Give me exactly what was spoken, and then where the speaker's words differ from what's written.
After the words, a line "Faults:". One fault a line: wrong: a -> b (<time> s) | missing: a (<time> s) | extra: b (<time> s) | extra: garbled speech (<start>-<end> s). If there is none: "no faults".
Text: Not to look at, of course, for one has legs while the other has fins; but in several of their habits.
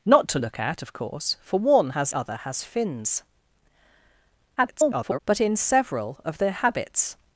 Not to look at, of course, for one has other has fins; [garbled] but in several of their habits.
Faults:
missing: legs while the (2.1 s)
extra: garbled speech (4.6-5.2 s)